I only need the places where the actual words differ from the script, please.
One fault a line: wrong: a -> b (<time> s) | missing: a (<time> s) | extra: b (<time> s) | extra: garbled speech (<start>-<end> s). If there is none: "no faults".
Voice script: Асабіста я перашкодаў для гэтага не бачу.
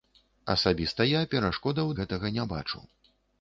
missing: для (1.9 s)